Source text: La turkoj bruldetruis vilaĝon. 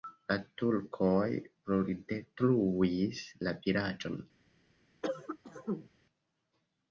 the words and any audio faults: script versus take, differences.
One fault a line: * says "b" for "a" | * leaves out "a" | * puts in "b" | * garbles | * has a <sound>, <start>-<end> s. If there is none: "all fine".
* puts in "la"
* has a cough, 5.0-5.9 s